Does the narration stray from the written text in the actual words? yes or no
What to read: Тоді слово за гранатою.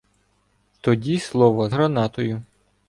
yes